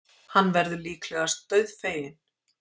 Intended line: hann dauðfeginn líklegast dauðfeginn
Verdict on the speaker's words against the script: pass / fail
fail